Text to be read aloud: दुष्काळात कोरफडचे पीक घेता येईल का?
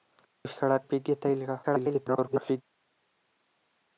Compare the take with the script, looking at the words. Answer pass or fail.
fail